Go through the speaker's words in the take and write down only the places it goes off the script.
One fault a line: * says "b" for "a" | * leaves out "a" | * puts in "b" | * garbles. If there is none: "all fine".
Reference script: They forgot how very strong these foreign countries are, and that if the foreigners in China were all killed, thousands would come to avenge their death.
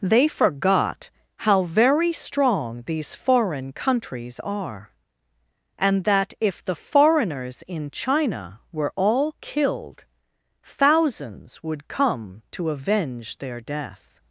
all fine